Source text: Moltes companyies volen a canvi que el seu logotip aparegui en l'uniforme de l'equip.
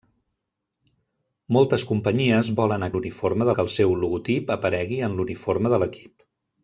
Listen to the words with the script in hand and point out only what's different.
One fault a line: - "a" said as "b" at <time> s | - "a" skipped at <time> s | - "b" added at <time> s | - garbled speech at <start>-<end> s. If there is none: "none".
- "canvi" said as "l'uniforme" at 2.9 s